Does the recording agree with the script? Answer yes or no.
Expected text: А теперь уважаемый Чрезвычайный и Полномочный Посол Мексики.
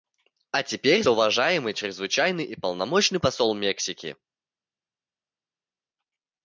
yes